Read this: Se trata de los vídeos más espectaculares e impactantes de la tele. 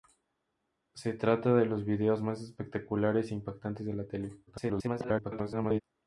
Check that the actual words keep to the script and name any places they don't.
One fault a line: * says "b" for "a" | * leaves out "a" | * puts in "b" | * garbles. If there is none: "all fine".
* garbles